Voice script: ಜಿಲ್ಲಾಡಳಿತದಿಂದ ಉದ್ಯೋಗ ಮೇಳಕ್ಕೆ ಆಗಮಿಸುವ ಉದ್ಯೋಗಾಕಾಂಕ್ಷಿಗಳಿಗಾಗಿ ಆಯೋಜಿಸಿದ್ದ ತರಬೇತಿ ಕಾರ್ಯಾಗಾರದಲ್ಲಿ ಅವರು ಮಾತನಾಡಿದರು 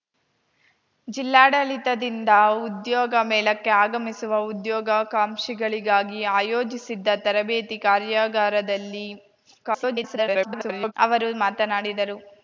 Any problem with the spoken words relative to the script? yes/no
yes